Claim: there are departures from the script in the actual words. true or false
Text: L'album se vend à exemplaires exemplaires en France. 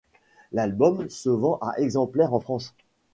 true